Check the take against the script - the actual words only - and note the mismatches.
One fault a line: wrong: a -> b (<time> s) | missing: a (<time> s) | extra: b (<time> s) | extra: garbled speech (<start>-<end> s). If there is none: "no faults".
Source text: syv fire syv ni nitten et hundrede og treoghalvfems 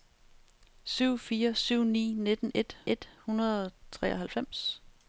extra: et (2.9 s)